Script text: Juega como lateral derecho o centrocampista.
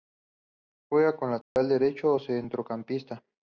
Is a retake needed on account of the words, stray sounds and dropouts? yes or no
yes